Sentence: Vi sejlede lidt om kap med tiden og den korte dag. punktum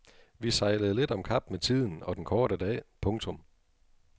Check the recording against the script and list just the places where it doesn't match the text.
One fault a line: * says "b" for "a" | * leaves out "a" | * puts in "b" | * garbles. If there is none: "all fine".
all fine